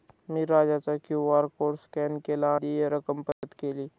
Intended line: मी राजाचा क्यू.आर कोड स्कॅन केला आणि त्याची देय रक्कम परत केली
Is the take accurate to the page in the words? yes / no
no